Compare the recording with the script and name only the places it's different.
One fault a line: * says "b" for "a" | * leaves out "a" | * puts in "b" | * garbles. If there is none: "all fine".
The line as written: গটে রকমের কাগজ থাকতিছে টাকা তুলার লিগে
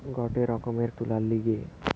* leaves out "কাগজ থাকতিছে টাকা"